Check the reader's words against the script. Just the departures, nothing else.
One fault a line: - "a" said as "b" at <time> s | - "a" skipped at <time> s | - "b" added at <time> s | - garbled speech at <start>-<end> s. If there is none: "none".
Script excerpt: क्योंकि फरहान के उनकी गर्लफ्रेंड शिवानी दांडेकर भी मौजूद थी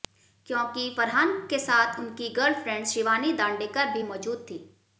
- "साथ" added at 1.6 s